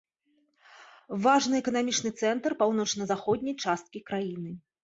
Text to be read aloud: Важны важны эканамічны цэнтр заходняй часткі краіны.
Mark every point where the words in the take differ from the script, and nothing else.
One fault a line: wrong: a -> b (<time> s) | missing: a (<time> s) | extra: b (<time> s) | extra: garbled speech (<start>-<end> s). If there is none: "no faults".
missing: важны (1.6 s)
extra: паўночна (2.6 s)